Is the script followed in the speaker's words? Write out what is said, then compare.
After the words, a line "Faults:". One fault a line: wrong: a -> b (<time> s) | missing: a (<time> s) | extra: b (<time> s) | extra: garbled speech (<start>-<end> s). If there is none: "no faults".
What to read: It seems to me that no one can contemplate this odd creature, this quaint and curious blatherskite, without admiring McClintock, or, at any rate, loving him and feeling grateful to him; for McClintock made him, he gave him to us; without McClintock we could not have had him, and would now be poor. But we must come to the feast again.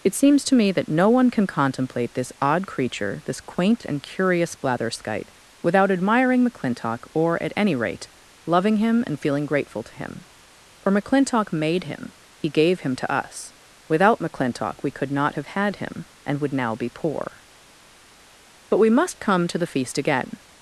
It seems to me that no one can contemplate this odd creature, this quaint and curious blatherskite, without admiring McClintock, or, at any rate, loving him and feeling grateful to him; for McClintock made him, he gave him to us; without McClintock we could not have had him, and would now be poor. But we must come to the feast again.
Faults:
no faults